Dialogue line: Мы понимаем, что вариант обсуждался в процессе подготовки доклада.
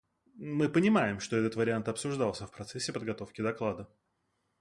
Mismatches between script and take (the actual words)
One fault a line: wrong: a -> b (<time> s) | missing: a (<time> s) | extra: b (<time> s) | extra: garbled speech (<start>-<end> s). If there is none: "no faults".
extra: этот (1.4 s)